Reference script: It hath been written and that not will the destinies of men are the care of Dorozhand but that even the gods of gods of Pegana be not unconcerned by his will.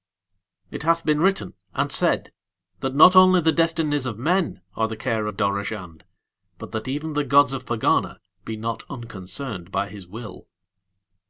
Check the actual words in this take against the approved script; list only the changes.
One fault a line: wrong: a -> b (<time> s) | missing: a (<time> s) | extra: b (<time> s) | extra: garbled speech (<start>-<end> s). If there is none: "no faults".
extra: said (1.9 s)
wrong: will -> only (3.1 s)
missing: gods of (7.6 s)